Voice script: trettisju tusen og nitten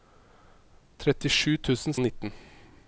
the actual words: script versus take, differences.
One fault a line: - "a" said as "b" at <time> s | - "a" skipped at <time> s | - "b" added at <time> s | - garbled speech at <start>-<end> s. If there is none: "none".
none